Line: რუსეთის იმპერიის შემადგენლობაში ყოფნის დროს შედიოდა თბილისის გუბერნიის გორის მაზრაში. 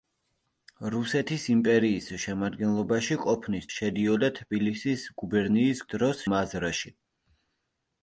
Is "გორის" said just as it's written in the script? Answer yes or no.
no